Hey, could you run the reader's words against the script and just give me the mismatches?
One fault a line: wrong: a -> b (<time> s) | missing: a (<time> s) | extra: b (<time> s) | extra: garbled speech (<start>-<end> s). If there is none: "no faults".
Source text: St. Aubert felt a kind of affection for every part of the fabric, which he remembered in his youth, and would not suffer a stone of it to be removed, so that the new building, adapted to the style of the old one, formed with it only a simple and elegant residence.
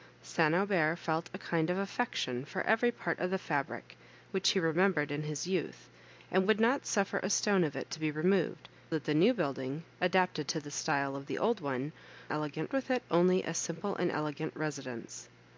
missing: so (8.7 s)
wrong: formed -> elegant (12.3 s)